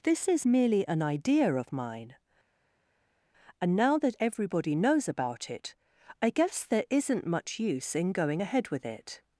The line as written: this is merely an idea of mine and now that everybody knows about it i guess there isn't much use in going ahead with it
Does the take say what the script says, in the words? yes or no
yes